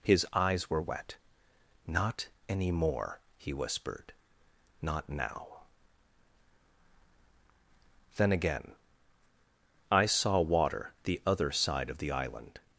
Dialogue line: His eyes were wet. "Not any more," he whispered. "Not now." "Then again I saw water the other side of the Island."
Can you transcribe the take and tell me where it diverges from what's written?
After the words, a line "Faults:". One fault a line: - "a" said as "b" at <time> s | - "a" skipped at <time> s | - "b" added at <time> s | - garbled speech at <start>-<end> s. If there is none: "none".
His eyes were wet. "Not any more," he whispered. "Not now." "Then again I saw water the other side of the Island."
Faults:
none